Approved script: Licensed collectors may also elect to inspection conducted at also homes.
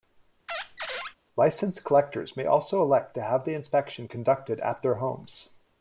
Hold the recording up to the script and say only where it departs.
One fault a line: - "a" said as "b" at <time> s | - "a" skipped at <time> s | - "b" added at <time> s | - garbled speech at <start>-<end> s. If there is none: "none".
- "have the" added at 3.2 s
- "also" said as "their" at 4.8 s